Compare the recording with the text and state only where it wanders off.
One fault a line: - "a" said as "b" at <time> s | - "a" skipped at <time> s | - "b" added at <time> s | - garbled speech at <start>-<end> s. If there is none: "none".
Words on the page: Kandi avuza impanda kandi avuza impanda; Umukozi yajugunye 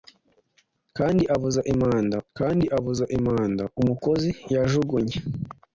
none